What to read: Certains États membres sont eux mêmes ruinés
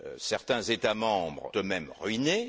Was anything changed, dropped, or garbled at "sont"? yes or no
yes